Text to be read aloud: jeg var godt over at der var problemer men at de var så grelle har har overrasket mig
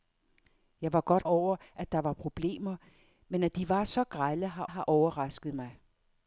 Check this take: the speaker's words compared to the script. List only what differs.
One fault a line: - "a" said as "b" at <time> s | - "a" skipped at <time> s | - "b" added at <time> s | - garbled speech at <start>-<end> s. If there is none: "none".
none